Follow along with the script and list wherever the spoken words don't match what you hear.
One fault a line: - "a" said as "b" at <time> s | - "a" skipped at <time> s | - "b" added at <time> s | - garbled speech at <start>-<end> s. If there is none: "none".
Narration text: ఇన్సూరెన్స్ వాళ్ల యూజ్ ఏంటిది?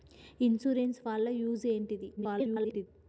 - garbled speech at 2.2-2.9 s